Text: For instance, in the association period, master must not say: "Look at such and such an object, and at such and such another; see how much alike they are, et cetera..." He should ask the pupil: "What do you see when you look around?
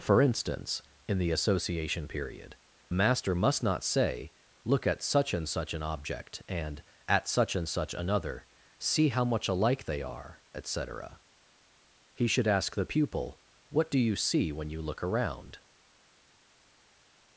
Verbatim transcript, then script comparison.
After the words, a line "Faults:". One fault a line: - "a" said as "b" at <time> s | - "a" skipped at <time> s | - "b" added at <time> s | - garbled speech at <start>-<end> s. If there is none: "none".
For instance, in the association period, master must not say: "Look at such and such an object, and at such and such another; see how much alike they are, et cetera..." He should ask the pupil: "What do you see when you look around?
Faults:
none